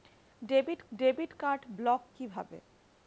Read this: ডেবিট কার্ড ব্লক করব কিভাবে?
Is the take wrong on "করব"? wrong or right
wrong